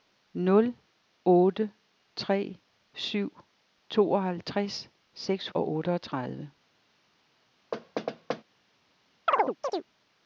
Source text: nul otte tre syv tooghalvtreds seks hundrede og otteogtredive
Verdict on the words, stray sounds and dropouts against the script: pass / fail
fail